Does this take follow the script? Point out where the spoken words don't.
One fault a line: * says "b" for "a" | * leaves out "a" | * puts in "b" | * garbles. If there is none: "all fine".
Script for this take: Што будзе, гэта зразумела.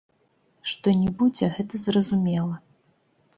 * puts in "не"